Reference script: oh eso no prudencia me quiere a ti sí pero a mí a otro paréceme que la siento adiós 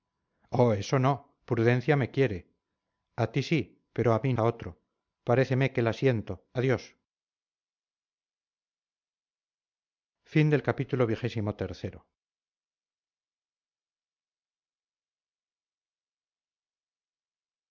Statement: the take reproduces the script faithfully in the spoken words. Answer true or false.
true